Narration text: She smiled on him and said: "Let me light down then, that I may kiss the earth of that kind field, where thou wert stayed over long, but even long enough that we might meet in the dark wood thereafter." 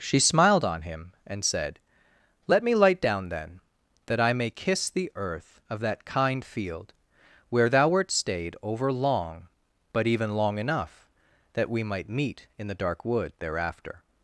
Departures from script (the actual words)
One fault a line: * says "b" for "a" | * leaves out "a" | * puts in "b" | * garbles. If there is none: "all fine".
all fine